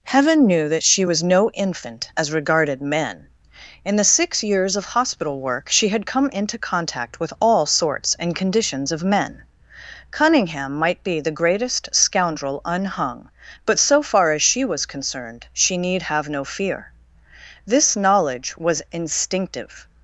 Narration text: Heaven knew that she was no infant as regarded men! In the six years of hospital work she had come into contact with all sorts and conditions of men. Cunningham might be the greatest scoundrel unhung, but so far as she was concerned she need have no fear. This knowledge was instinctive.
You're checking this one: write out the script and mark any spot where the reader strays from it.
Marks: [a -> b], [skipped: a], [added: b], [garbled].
Heaven knew that she was no infant as regarded men! In the six years of hospital work she had come into contact with all sorts and conditions of men. Cunningham might be the greatest scoundrel unhung, but so far as she was concerned she need have no fear. This knowledge was instinctive.